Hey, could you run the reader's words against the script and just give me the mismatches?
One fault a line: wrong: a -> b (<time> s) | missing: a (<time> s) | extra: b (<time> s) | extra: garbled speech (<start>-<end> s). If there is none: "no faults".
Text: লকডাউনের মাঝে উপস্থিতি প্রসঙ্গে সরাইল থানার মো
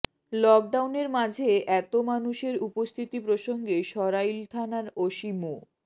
extra: এত মানুষের (1.8 s)
extra: ওসি (5.0 s)